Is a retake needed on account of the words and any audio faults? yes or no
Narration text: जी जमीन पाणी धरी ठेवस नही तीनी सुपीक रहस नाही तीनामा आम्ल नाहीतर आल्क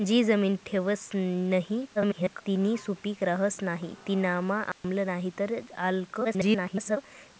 yes